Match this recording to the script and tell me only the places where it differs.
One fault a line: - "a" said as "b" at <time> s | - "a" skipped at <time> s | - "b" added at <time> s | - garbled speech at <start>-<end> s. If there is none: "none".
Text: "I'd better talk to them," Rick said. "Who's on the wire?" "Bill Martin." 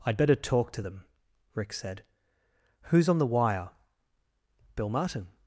none